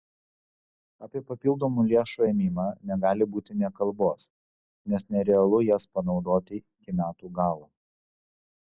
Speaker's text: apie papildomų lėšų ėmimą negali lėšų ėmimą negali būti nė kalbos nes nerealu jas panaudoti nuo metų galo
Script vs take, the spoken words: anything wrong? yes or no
yes